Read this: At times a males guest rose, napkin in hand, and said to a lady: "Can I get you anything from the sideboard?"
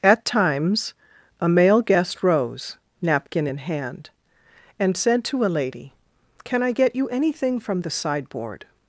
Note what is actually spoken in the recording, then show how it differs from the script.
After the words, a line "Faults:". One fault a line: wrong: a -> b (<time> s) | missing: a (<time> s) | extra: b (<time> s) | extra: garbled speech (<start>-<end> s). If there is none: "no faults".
At times a male guest rose, napkin in hand, and said to a lady: "Can I get you anything from the sideboard?"
Faults:
wrong: males -> male (1.5 s)